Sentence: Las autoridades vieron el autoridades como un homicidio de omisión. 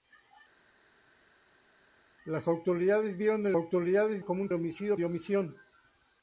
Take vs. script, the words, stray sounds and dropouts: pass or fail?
pass